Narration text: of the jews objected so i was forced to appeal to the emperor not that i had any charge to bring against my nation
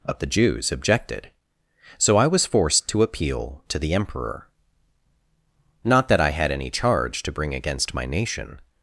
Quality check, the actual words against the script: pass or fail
pass